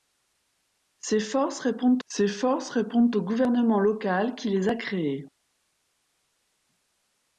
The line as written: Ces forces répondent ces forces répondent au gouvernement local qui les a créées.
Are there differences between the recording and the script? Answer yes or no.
no